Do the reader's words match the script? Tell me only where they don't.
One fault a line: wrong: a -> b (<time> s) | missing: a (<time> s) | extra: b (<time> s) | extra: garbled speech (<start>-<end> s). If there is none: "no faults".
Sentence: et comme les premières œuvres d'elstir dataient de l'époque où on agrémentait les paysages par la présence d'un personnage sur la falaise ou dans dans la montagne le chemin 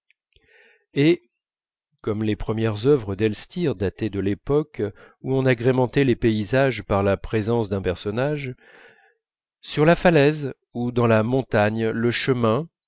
missing: dans (11.1 s)